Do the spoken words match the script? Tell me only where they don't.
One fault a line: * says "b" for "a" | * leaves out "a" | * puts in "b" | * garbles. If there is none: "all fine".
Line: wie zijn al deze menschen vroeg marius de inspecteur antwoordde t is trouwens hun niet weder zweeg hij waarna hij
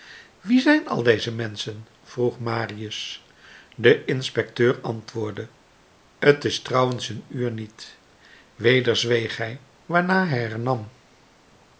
* puts in "uur"